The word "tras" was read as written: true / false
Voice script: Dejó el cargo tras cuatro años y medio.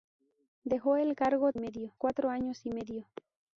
false